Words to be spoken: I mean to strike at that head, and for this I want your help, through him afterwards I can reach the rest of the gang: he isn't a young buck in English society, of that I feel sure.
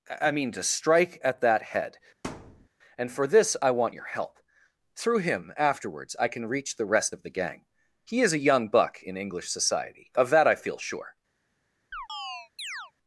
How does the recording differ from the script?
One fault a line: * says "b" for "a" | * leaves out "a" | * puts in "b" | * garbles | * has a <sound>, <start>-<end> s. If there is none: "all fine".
* has a thud, 2.2-2.7 s
* says "is" for "isn't"
* has a chirp, 11.9-12.9 s